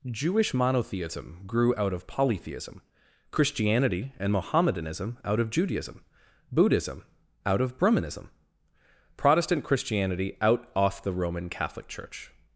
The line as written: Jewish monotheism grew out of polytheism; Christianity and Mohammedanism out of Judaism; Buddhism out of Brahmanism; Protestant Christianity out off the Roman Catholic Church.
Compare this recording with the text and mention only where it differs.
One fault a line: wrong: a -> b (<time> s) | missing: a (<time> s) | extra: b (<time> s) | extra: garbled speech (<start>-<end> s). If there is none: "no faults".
no faults